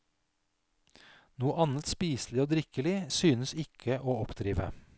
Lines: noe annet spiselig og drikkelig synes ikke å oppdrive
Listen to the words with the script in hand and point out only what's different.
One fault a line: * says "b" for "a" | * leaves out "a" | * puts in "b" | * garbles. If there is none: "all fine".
all fine